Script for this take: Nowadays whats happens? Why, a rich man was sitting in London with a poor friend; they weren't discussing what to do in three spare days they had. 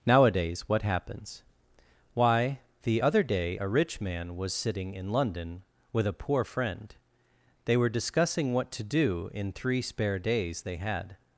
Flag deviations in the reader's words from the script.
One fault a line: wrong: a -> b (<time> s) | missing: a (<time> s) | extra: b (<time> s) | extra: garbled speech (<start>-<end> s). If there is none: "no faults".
wrong: whats -> what (0.7 s)
extra: the other day (2.8 s)
wrong: weren't -> were (7.8 s)